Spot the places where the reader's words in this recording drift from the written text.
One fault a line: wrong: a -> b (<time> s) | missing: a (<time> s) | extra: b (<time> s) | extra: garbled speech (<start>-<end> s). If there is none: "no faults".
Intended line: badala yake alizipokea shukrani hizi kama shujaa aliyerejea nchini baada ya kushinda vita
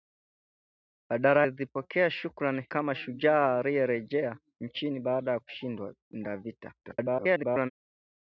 missing: yake (1.5 s)
missing: hizi (2.7 s)
extra: garbled speech (6.8-7.7 s)